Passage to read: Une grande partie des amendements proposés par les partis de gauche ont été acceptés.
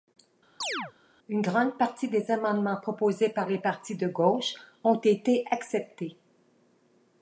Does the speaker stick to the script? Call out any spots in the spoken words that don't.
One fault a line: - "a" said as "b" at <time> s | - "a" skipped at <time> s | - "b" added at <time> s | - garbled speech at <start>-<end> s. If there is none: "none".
none